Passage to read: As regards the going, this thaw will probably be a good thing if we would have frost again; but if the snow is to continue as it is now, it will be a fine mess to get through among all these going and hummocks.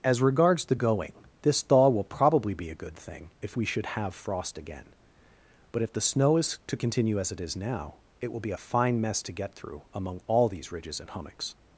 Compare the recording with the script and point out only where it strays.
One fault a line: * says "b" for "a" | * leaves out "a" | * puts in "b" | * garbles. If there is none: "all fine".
* says "should" for "would"
* says "ridges" for "going"